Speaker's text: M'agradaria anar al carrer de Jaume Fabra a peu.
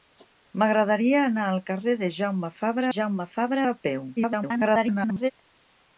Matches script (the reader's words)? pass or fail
fail